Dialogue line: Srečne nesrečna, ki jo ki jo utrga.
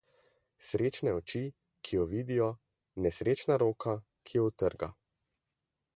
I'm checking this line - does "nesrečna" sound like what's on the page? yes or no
no